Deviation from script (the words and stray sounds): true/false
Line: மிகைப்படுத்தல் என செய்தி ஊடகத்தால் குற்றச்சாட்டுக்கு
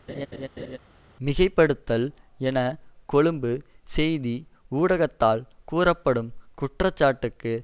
true